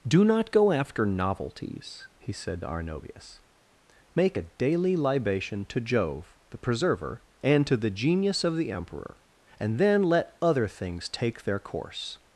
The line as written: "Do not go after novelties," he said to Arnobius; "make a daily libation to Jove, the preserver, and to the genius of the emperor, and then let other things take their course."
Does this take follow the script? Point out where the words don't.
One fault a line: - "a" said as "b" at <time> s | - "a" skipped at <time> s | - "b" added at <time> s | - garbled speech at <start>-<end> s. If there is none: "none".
none